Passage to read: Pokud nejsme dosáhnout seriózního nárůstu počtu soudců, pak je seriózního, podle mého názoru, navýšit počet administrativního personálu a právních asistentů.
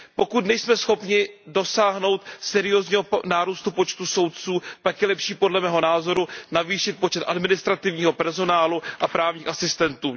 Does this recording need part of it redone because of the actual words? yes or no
yes